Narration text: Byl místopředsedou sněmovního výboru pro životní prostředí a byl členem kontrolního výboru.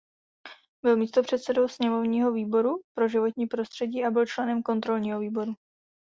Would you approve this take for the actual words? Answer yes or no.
yes